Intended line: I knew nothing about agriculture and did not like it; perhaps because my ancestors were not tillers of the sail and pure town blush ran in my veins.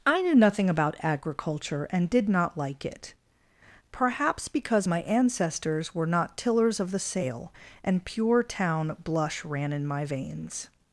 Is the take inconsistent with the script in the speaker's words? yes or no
no